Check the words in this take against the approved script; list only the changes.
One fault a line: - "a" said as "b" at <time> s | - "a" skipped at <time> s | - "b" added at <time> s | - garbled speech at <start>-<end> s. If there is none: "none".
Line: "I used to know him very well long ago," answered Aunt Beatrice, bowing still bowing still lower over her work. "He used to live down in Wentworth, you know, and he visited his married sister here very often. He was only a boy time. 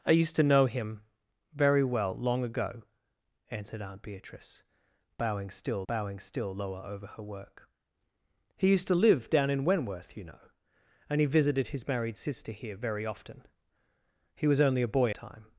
none